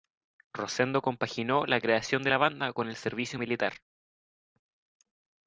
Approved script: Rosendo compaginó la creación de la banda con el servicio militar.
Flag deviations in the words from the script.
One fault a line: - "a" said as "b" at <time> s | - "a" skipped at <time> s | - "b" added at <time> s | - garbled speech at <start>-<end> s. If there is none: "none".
none